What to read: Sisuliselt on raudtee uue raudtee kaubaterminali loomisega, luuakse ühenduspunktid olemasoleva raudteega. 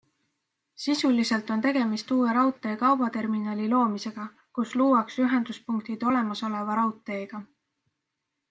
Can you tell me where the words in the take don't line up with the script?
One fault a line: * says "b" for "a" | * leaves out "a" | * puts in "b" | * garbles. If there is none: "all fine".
* says "tegemist" for "raudtee"
* puts in "kus"